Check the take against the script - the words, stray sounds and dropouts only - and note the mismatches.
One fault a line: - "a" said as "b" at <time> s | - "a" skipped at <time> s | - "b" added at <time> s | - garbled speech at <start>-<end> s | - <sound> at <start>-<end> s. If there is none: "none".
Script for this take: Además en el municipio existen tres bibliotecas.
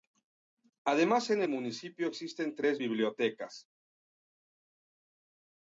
none